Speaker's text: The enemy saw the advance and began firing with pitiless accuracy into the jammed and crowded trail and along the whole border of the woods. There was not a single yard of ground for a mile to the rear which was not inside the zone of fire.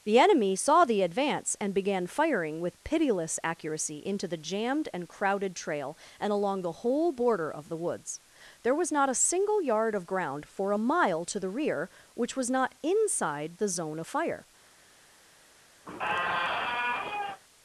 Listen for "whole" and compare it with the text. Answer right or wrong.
right